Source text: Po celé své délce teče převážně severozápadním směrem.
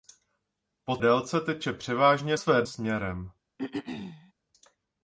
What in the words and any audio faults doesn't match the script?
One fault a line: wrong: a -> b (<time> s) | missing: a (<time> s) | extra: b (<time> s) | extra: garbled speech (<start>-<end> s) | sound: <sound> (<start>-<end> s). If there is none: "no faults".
missing: celé své (1.0 s)
wrong: severozápadním -> své (2.3 s)
sound: throat clearing (3.6-4.3 s)